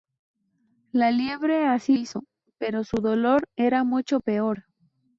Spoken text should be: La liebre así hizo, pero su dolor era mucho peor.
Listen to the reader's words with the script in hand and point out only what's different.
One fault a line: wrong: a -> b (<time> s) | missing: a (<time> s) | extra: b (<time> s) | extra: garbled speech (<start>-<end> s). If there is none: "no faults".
no faults